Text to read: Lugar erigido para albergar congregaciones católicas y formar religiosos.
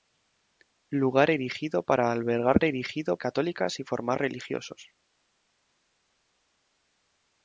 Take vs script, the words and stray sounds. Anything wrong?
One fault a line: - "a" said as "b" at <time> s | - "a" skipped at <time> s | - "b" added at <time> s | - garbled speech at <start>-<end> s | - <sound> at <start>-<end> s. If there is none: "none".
- "congregaciones" said as "erigido" at 2.6 s